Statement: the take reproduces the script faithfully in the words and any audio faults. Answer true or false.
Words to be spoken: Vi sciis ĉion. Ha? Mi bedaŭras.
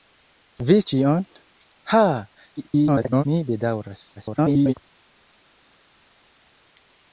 false